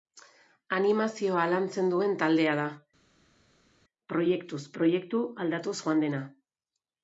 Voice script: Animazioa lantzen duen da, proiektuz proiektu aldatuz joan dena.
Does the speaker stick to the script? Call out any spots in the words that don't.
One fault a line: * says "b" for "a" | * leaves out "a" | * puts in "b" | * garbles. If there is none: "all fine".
* puts in "taldea"